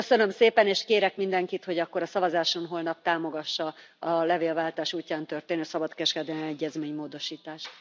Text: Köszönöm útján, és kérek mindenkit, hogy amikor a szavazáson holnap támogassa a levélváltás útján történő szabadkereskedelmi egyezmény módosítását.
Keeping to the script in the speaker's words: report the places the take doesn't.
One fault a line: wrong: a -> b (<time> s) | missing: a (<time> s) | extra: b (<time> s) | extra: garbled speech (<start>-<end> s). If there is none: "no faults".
wrong: útján -> szépen (0.3 s)
wrong: amikor -> akkor (1.8 s)